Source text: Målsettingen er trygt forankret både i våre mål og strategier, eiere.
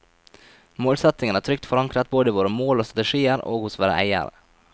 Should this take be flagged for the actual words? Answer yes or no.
yes